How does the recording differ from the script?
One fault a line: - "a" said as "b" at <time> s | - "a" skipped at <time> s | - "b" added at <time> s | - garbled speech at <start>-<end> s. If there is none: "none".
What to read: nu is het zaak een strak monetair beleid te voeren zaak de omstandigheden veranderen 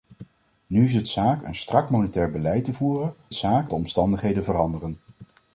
none